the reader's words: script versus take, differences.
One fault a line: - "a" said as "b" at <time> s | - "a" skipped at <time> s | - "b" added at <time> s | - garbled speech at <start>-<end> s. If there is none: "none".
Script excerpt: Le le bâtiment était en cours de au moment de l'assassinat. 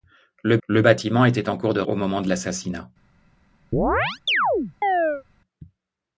none